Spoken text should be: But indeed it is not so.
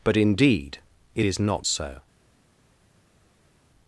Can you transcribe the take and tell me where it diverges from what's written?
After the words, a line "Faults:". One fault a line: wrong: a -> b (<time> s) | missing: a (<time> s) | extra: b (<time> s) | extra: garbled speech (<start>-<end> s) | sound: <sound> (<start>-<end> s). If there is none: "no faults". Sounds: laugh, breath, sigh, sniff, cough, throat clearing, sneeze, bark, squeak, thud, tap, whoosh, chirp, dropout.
But indeed it is not so.
Faults:
no faults